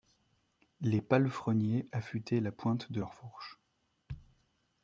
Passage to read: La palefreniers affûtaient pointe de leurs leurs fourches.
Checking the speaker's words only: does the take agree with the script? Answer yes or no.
no